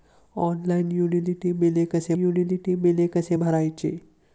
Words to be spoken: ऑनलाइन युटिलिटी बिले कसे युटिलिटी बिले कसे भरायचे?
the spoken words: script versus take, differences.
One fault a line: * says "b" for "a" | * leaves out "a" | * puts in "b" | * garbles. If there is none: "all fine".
all fine